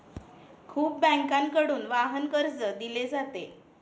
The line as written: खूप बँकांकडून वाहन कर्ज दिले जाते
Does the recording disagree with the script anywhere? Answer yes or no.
no